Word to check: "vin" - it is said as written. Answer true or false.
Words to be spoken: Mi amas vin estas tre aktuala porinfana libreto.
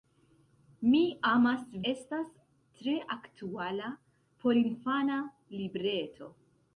false